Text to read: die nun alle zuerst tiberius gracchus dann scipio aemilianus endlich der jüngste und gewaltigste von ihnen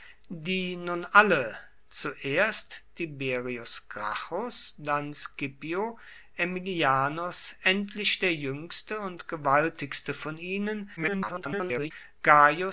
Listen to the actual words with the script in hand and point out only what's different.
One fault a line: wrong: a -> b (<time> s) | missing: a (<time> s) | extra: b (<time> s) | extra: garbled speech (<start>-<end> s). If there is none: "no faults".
extra: garbled speech (11.0-11.9 s)